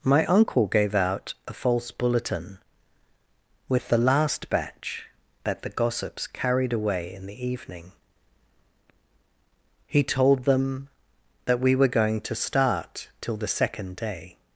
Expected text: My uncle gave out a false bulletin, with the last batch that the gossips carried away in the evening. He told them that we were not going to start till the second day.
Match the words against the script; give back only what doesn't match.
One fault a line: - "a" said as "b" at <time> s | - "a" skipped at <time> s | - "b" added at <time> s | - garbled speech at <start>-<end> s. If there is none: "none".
- "not" skipped at 11.9 s